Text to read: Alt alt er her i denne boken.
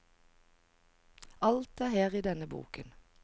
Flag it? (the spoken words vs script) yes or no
yes